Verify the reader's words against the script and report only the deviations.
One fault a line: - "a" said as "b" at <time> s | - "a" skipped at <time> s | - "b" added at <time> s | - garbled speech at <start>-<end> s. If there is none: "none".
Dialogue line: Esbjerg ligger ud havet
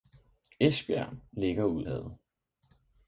none